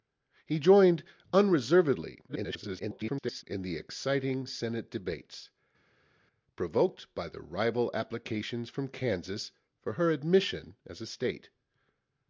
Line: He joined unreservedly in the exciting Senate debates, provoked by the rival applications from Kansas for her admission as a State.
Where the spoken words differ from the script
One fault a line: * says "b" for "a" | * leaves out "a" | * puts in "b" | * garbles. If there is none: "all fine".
* garbles